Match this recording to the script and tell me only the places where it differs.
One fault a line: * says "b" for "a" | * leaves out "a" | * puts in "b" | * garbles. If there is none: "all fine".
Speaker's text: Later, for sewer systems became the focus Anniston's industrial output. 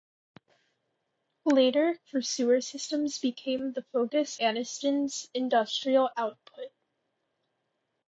all fine